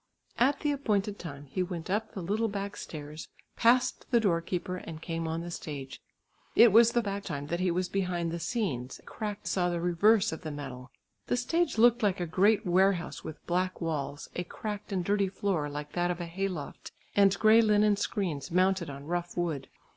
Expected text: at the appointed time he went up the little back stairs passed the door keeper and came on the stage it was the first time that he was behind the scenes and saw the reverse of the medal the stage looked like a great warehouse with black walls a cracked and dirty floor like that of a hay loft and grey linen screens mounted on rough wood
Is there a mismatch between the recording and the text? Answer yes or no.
yes